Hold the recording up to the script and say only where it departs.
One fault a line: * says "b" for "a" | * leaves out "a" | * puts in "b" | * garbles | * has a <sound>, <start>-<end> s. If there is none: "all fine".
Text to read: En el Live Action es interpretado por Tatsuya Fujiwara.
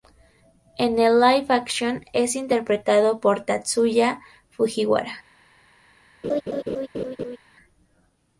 * has a laugh, 6.2-7.4 s